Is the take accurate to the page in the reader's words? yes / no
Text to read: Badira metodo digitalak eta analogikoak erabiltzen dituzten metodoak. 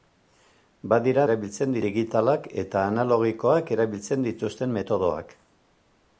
no